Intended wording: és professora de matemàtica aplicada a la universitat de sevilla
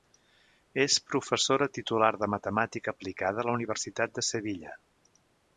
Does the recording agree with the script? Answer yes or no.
no